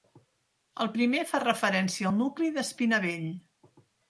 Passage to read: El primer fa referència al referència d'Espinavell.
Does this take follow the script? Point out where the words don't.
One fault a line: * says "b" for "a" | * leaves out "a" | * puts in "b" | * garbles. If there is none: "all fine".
* says "nucli" for "referència"